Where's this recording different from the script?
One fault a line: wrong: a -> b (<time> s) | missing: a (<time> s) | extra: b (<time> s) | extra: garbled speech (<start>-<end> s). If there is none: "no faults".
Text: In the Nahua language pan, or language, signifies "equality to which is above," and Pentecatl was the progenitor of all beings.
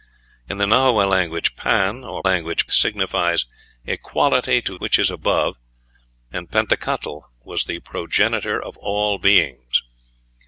no faults